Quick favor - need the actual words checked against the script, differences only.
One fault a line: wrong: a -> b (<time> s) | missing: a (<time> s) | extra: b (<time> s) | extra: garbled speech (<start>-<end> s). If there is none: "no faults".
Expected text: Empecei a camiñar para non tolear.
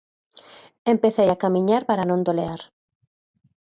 no faults